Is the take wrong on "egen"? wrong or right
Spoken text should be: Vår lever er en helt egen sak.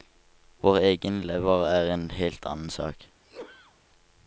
wrong